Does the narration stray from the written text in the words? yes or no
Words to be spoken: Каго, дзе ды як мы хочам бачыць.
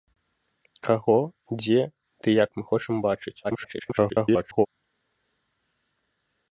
yes